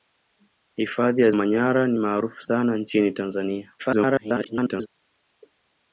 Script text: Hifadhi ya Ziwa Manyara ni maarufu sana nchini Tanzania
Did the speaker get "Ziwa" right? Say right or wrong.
wrong